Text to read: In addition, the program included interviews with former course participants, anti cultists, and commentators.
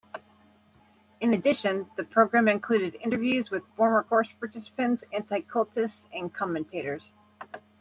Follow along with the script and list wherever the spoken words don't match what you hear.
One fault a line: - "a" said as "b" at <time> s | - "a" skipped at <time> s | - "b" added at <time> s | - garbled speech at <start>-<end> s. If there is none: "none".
none